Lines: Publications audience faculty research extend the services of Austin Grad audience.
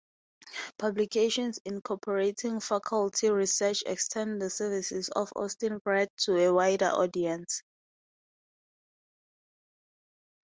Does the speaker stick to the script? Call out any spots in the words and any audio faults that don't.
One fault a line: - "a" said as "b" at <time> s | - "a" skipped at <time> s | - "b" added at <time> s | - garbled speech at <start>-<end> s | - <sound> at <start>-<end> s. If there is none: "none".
- "audience" said as "incorporating" at 1.6 s
- "to a wider" added at 6.2 s